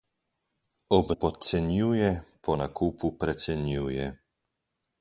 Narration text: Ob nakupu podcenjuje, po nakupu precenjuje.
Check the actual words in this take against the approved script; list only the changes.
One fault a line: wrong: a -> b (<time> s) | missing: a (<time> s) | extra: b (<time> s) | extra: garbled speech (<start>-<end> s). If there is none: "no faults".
missing: nakupu (1.1 s)